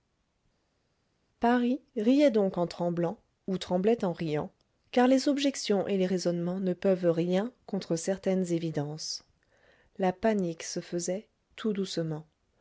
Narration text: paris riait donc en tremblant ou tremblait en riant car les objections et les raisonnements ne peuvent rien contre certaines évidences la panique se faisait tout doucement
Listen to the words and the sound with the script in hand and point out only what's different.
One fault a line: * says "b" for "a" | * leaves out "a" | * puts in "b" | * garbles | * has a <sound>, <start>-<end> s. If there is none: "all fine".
all fine